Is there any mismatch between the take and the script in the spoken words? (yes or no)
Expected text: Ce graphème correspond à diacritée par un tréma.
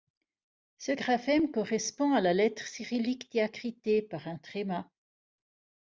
yes